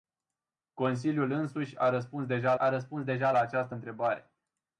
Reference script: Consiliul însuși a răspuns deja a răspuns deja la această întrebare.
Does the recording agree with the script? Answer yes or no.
yes